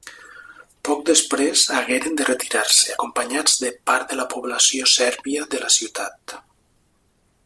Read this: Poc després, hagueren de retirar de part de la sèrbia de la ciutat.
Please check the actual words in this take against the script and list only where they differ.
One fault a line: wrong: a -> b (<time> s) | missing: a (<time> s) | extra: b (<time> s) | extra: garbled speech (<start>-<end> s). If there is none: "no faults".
extra: se acompanyats (2.8 s)
extra: població (4.4 s)